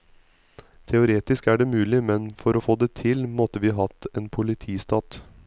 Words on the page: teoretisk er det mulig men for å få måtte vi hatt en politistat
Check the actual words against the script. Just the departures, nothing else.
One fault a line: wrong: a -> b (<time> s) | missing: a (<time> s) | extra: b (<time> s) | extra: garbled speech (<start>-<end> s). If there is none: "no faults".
extra: det til (2.8 s)